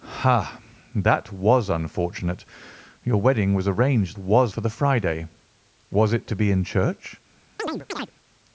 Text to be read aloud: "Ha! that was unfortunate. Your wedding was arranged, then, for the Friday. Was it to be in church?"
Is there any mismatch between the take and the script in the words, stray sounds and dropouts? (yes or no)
yes